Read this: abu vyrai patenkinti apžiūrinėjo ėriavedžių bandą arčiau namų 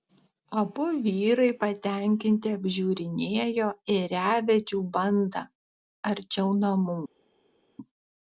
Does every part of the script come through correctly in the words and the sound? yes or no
yes